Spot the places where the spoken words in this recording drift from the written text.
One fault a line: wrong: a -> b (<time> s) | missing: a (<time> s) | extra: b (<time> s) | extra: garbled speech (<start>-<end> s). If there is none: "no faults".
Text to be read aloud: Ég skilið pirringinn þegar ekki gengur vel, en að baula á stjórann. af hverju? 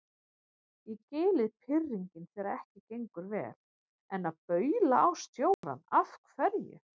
no faults